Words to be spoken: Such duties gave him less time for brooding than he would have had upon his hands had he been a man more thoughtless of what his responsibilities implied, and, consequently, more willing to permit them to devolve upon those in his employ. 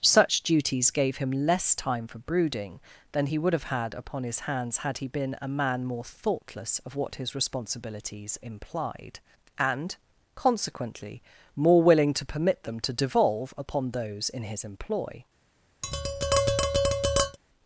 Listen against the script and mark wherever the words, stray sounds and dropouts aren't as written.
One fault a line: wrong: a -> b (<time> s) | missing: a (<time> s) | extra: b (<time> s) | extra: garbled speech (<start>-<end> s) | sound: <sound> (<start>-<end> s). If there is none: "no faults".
sound: tap (15.8-17.4 s)